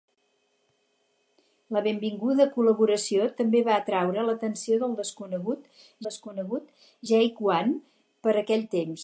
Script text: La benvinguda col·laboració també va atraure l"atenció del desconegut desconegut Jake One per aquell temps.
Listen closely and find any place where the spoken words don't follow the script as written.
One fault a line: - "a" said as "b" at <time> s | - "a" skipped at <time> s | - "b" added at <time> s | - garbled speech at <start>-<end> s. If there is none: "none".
none